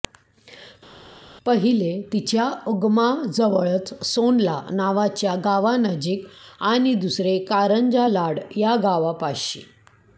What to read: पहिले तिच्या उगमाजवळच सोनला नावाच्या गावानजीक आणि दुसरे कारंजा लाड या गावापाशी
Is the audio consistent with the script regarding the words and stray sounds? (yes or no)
yes